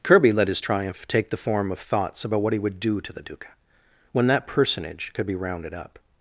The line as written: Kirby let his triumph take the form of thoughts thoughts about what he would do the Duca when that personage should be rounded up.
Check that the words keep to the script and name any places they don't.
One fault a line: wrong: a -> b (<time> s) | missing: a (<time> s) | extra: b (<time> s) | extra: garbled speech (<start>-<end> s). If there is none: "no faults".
missing: thoughts (2.2 s)
extra: to (3.0 s)
wrong: should -> could (5.1 s)